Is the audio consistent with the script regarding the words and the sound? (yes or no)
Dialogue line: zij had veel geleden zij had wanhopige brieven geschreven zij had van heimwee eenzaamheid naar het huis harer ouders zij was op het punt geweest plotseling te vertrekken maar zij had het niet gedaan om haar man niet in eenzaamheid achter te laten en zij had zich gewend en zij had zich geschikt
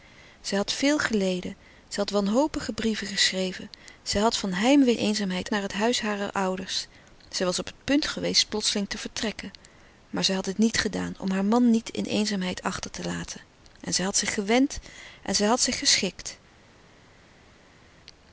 yes